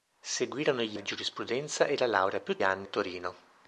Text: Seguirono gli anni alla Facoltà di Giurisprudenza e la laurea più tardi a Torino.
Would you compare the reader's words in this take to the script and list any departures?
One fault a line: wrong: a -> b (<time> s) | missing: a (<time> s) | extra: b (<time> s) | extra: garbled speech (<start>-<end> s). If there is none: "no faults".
missing: anni alla Facoltà (1.0 s)
wrong: tardi -> anni (2.6 s)